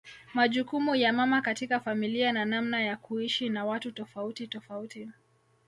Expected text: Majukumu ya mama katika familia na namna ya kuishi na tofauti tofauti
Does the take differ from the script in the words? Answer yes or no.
yes